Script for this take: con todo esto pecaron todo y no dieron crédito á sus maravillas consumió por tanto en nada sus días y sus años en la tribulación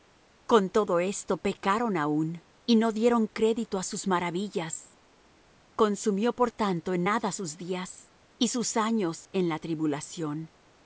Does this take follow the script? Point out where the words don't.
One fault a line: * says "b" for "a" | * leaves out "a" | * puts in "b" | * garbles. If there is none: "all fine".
* says "aún" for "todo"